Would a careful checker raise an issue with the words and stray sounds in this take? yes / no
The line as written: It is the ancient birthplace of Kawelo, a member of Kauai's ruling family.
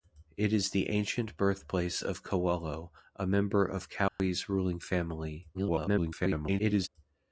yes